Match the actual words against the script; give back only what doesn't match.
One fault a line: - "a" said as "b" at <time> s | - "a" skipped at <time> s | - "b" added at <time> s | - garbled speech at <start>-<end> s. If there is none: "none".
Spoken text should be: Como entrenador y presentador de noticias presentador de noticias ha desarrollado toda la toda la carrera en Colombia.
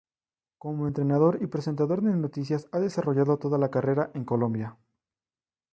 - "presentador de noticias" skipped at 2.7 s
- "toda la" skipped at 3.7 s